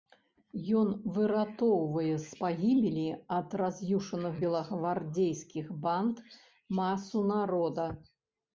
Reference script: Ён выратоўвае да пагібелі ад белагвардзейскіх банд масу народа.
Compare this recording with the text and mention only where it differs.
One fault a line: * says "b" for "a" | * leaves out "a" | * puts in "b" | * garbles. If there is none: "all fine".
* says "з" for "да"
* puts in "раз'юшаных"